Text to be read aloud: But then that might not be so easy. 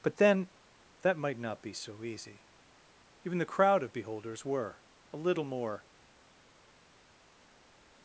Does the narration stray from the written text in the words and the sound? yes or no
yes